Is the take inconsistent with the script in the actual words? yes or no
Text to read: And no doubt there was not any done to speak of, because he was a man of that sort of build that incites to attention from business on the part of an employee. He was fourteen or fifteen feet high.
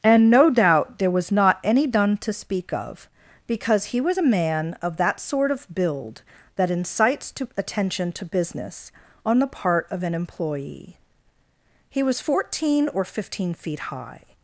yes